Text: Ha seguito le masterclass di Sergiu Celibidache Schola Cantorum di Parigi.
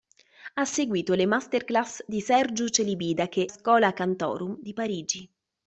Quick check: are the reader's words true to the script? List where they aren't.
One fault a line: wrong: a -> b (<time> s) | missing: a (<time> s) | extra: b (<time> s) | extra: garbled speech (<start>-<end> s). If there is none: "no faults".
no faults